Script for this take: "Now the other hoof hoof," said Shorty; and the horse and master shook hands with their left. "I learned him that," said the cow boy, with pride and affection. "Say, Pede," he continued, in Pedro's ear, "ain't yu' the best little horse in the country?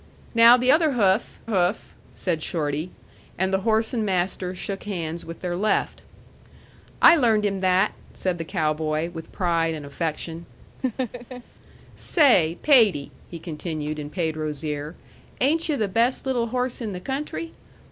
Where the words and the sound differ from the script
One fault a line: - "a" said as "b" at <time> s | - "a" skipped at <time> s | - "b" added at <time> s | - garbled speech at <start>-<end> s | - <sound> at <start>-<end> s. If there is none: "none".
- laugh at 10.8-11.4 s